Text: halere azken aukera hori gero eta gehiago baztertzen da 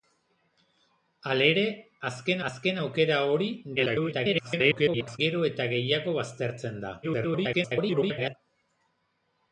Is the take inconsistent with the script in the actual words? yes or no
yes